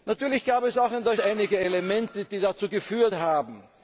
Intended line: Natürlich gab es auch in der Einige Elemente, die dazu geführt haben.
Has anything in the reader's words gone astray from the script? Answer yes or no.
no